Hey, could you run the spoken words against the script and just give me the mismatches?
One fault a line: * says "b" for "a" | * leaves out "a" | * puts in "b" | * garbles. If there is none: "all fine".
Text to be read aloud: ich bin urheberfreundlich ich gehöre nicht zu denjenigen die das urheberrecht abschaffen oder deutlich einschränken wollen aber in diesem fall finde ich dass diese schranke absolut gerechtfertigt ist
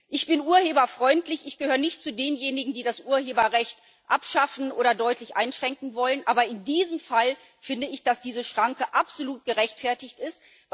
all fine